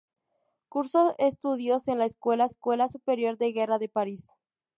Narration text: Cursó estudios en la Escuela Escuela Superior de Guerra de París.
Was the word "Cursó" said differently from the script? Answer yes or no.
no